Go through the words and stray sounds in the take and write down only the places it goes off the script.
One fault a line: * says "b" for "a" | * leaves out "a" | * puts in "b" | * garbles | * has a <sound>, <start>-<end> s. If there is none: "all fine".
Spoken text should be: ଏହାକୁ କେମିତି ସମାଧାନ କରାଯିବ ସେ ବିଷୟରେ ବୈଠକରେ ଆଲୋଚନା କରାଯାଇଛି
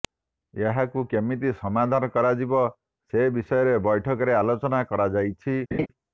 * has a laugh, 5.7-5.9 s